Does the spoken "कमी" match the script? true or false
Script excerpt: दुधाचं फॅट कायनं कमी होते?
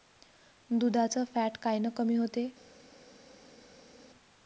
true